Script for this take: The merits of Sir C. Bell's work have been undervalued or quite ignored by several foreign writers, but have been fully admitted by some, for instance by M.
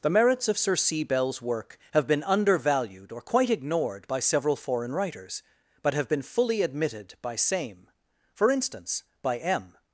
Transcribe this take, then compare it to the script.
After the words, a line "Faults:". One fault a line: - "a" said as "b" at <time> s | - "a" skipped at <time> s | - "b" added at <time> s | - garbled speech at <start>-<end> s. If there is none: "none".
The merits of Sir C. Bell's work have been undervalued or quite ignored by several foreign writers, but have been fully admitted by same, for instance by M.
Faults:
- "some" said as "same" at 7.4 s